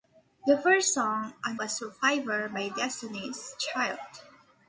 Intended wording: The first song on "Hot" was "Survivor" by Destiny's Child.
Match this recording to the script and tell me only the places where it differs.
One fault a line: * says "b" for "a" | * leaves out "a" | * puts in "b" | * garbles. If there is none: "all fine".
* leaves out "Hot"